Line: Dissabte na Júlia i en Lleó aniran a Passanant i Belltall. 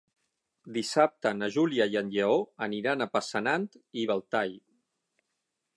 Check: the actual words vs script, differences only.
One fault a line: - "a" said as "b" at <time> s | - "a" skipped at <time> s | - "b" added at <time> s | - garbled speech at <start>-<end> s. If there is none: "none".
none